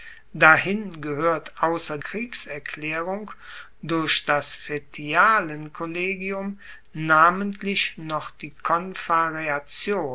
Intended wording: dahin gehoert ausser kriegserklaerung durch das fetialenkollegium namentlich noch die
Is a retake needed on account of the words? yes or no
no